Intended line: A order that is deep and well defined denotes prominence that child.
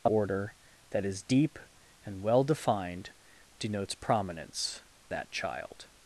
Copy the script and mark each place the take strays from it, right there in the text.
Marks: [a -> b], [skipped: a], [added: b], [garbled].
A order that is deep and well defined denotes prominence that child.